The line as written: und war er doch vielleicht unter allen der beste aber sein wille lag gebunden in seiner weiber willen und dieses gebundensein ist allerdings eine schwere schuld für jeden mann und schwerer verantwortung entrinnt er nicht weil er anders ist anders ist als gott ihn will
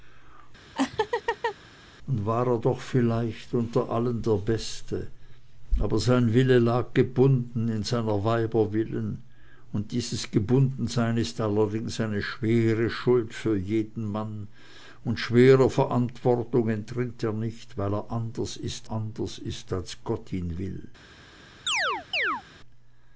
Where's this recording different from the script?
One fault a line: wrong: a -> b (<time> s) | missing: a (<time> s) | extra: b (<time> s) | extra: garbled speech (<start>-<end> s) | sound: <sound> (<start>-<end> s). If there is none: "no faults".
sound: laugh (0.8-1.6 s)
sound: chirp (21.7-22.4 s)